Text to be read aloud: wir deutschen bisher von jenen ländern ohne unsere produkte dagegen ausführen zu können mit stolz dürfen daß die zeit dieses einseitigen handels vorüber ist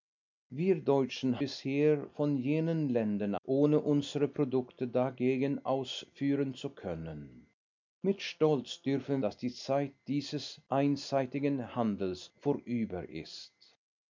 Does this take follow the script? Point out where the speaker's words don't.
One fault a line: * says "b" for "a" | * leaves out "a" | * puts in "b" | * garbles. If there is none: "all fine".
all fine